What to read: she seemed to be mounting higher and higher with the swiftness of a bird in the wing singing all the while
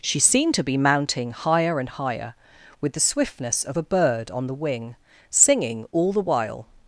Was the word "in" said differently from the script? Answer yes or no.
yes